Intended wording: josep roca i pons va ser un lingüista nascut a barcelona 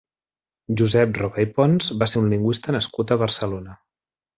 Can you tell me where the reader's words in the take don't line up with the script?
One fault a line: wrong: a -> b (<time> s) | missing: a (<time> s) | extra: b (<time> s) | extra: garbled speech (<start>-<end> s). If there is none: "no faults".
no faults